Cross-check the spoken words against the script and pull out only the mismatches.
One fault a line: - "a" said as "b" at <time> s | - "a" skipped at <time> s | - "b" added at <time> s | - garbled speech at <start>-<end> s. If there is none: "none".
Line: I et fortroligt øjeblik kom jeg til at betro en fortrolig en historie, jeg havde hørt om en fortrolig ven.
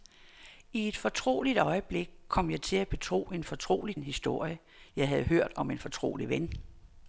none